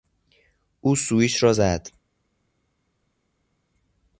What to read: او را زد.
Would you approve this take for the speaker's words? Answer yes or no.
no